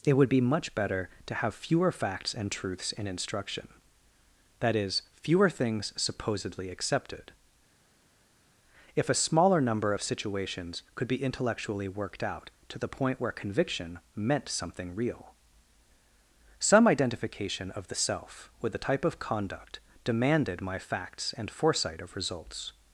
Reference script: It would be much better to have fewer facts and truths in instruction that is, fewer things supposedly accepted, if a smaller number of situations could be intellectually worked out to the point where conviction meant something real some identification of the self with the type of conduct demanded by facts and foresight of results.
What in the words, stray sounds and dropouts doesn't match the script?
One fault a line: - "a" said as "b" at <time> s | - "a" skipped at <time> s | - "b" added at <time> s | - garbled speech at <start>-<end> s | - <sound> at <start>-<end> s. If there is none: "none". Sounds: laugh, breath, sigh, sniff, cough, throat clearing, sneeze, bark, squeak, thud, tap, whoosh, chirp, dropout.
- "by" said as "my" at 20.6 s